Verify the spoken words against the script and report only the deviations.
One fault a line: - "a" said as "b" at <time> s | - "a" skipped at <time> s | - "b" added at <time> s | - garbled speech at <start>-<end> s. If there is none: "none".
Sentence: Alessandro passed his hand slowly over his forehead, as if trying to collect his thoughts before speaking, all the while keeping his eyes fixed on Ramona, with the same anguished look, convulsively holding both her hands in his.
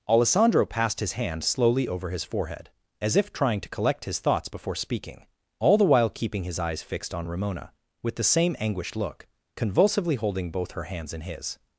none